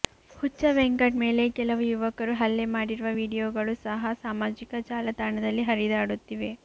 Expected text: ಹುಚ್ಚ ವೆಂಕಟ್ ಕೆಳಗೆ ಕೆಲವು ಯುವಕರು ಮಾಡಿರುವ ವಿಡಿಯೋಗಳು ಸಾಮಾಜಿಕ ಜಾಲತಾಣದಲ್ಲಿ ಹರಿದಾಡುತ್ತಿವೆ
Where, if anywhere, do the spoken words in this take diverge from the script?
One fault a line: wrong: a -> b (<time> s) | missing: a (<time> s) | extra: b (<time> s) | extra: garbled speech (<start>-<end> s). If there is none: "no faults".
wrong: ಕೆಳಗೆ -> ಮೇಲೆ (1.2 s)
extra: ಹಲ್ಲೆ (2.4 s)
extra: ಸಹ (3.9 s)